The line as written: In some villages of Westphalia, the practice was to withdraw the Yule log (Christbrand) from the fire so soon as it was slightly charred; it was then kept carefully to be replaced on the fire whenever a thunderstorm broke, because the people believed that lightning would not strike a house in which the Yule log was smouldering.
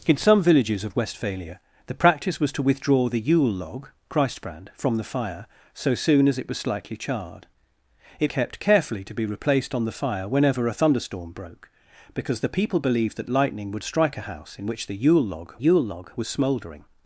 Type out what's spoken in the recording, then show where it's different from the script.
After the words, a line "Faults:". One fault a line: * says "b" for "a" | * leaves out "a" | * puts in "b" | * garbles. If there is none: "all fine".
In some villages of Westphalia, the practice was to withdraw the Yule log (Christbrand) from the fire so soon as it was slightly charred; it kept carefully to be replaced on the fire whenever a thunderstorm broke, because the people believed that lightning would strike a house in which the Yule log Yule log was smouldering.
Faults:
* leaves out "was then"
* leaves out "not"
* puts in "Yule log"